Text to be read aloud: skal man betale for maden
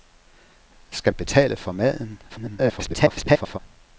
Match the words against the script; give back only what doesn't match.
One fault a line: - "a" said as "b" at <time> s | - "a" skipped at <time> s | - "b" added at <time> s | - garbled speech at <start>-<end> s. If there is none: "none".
- "man" skipped at 1.1 s
- garbled speech at 2.3-3.6 s